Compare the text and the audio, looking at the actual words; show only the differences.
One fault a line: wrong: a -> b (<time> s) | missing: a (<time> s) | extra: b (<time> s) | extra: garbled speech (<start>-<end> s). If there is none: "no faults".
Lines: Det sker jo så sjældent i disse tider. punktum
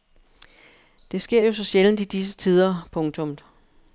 no faults